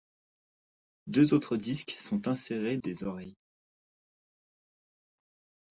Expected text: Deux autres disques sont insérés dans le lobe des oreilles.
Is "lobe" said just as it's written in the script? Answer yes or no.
no